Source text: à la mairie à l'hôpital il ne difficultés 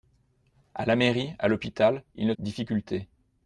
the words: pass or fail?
pass